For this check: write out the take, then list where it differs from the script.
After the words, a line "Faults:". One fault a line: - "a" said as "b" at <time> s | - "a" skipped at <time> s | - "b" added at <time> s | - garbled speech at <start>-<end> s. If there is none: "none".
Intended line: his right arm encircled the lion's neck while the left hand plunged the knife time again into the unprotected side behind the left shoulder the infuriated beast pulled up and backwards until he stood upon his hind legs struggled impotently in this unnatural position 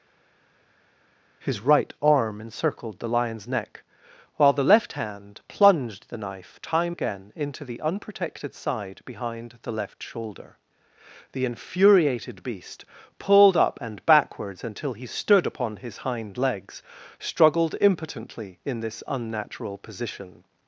his right arm encircled the lion's neck while the left hand plunged the knife time again into the unprotected side behind the left shoulder the infuriated beast pulled up and backwards until he stood upon his hind legs struggled impotently in this unnatural position
Faults:
none